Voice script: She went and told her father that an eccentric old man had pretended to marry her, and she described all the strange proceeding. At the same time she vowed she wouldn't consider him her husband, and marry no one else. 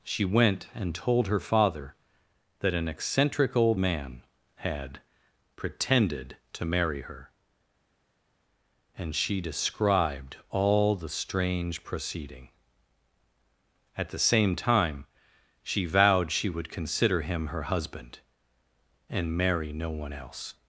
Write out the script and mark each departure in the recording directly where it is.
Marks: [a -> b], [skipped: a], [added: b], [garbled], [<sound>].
She went and told her father that an eccentric old man had pretended to marry her, and she described all the strange proceeding. At the same time she vowed she [wouldn't -> would] consider him her husband, and marry no one else.